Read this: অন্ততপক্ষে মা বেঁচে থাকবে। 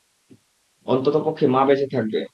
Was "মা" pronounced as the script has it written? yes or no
yes